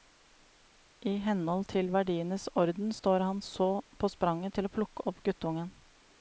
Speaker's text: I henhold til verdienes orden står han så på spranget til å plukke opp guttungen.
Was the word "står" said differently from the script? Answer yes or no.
no